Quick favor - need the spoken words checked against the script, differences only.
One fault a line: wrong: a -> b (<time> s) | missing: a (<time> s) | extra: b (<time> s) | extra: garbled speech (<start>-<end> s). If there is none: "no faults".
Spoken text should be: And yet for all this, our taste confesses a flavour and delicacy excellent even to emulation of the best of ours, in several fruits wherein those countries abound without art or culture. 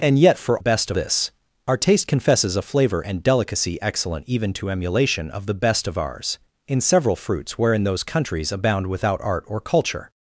wrong: all -> best (0.6 s)